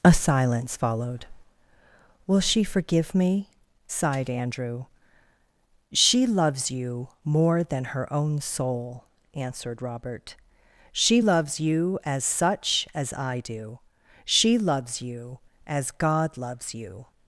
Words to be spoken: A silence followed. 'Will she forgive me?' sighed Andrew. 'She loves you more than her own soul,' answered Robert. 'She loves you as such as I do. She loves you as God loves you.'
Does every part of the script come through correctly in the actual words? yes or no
yes